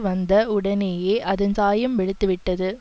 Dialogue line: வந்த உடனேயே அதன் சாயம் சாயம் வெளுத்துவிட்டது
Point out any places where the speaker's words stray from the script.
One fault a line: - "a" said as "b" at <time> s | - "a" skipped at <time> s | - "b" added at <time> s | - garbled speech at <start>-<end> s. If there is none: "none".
- "சாயம்" skipped at 2.0 s